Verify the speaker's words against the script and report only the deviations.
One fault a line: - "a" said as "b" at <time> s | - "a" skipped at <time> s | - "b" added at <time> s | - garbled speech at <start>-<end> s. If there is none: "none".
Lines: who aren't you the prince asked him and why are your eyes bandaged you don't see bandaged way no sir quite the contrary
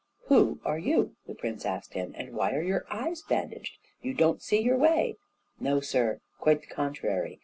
- "aren't" said as "are" at 0.7 s
- "bandaged" said as "your" at 4.6 s